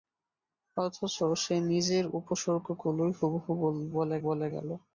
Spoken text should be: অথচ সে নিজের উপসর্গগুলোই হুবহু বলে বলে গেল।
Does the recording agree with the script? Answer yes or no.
yes